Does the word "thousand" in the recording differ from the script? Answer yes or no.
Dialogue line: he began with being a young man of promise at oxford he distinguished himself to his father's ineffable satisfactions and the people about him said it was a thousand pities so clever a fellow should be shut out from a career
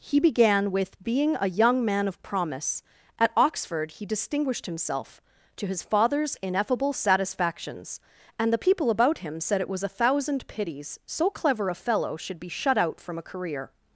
no